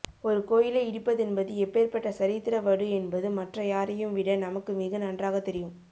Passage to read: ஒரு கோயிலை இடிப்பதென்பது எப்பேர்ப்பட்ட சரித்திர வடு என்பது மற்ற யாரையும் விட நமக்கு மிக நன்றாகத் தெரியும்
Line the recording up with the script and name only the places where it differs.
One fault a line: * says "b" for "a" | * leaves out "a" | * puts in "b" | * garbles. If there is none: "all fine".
all fine